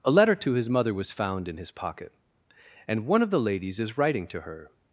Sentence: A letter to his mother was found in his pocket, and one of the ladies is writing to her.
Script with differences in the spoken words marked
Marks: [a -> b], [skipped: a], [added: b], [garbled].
A letter to his mother was found in his pocket, and one of the ladies is writing to her.